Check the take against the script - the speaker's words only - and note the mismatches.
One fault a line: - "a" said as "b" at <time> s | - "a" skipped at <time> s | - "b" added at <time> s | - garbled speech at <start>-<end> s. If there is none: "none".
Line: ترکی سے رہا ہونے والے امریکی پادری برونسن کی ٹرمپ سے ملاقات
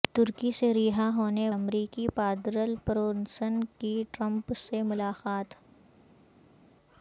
- "والے" skipped at 1.5 s